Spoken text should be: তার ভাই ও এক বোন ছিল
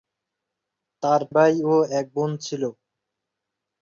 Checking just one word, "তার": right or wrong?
right